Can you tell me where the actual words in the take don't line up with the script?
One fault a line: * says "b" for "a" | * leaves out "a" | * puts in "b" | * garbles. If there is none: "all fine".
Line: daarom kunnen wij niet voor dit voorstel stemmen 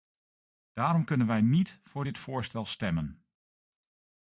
all fine